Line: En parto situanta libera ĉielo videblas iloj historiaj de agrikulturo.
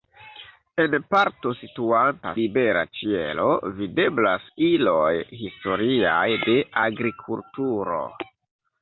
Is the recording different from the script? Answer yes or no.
no